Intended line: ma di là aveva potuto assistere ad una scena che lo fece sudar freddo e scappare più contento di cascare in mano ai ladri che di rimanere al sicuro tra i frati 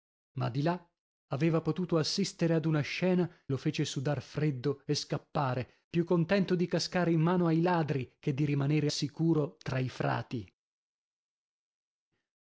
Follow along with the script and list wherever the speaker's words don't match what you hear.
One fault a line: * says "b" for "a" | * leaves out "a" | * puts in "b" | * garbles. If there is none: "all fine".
* leaves out "che"
* leaves out "al"